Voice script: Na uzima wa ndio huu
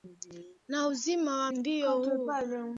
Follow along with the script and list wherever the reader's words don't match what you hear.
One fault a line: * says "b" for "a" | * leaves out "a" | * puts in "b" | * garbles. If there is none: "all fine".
all fine